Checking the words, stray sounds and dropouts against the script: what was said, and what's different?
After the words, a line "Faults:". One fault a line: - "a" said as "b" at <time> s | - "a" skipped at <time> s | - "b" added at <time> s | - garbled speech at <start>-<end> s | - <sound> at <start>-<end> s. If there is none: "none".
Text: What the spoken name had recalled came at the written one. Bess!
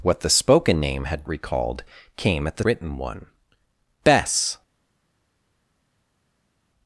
What the spoken name had recalled came at the written one. Bess!
Faults:
none